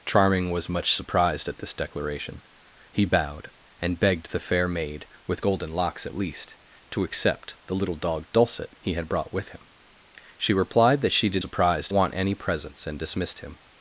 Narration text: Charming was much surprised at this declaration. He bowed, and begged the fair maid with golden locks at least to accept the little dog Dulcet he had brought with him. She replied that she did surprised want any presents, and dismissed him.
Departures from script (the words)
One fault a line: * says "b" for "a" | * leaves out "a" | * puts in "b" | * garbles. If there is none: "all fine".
all fine